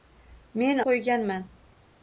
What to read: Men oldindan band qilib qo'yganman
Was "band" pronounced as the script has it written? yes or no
no